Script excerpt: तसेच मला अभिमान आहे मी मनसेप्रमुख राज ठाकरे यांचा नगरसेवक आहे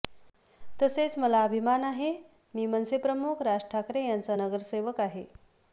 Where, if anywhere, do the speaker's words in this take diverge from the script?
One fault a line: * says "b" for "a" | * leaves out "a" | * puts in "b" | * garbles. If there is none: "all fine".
all fine